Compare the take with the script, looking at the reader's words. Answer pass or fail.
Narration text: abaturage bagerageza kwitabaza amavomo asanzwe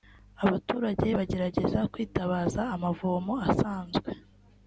pass